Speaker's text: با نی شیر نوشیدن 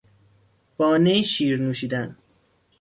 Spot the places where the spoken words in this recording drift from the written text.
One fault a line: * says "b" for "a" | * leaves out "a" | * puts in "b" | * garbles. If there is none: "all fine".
all fine